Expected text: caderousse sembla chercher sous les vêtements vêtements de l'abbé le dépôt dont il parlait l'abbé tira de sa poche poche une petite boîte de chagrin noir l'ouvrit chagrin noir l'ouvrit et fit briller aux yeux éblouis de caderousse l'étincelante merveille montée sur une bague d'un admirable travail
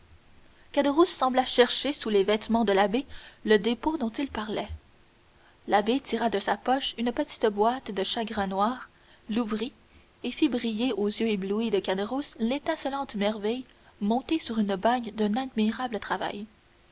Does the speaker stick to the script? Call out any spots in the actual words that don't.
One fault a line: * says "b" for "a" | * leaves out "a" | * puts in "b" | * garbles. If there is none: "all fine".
* leaves out "vêtements"
* leaves out "poche"
* leaves out "chagrin noir l'ouvrit"